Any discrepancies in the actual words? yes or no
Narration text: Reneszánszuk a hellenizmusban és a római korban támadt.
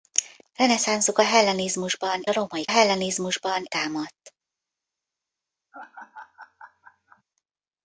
yes